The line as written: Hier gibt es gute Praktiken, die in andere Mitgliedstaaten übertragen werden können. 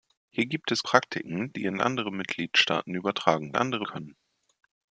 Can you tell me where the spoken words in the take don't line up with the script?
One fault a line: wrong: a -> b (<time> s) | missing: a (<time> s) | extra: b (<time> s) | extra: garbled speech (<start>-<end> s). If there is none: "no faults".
missing: gute (0.8 s)
wrong: werden -> andere (3.5 s)